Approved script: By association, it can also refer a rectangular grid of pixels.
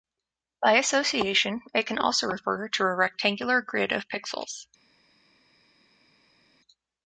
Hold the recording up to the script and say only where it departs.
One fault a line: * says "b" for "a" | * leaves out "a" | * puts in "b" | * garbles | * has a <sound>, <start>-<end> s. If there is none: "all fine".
* puts in "to"